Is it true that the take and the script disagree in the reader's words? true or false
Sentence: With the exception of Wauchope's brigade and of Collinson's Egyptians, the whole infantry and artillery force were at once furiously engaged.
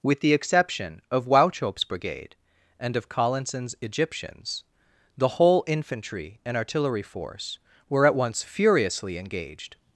false